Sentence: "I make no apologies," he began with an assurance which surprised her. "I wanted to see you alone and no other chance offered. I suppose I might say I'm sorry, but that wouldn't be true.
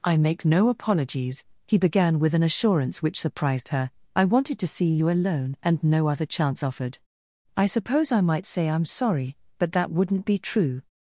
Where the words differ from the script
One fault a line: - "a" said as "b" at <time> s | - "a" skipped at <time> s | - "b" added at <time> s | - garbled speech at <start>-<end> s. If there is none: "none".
none